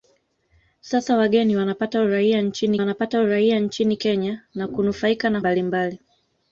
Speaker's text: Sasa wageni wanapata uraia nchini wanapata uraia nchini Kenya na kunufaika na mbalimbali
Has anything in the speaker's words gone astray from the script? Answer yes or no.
no